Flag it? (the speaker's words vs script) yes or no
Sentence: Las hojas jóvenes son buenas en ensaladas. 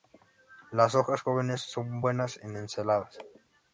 no